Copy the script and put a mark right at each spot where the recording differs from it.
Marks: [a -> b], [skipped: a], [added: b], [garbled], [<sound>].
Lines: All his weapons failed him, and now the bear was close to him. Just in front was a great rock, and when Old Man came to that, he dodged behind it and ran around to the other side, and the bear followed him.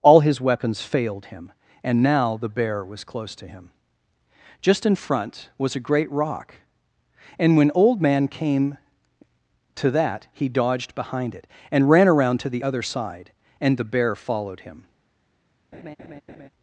All his weapons failed him, and now the bear was close to him. Just in front was a great rock, and when Old Man came to that, he dodged behind it and ran around to the other side, and the bear followed him. [laugh]